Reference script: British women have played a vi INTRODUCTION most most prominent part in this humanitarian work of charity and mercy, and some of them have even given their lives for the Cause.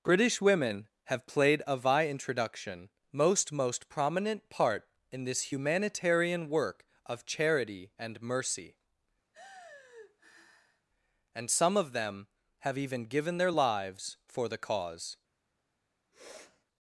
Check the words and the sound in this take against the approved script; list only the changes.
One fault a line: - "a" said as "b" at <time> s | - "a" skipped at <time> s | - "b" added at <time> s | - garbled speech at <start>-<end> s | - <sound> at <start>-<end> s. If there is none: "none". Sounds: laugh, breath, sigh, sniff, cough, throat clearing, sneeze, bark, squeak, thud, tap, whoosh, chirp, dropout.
- sigh at 9.3-10.9 s
- sniff at 16.1-16.6 s